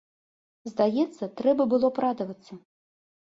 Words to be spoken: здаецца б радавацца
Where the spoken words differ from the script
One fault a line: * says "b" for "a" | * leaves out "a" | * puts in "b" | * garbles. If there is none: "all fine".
* puts in "трэба было"